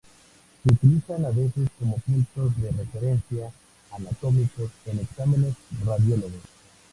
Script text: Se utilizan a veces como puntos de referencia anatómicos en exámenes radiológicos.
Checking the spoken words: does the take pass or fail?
pass